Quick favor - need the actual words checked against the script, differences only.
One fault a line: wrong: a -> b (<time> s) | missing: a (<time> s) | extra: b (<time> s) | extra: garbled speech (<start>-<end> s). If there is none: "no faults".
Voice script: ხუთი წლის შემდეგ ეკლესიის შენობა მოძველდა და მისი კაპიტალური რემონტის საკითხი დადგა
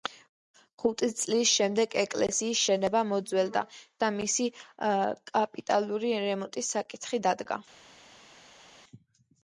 no faults